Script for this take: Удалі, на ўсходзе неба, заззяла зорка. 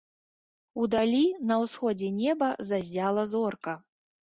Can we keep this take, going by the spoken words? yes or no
yes